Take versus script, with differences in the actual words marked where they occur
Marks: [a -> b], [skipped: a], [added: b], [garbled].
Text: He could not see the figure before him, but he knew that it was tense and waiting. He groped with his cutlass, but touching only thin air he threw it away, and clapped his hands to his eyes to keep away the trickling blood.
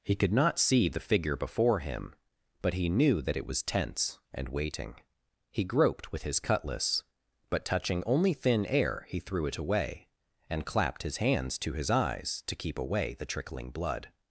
He could not see the figure before him, but he knew that it was tense and waiting. He groped with his cutlass, but touching only thin air he threw it away, and clapped his hands to his eyes to keep away the trickling blood.